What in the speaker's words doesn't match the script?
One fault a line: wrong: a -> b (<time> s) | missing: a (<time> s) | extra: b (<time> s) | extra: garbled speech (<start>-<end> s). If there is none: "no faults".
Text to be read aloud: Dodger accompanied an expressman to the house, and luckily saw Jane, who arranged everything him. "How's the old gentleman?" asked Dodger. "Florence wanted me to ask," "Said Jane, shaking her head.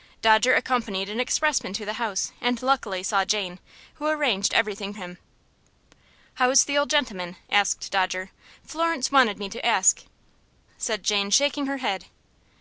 no faults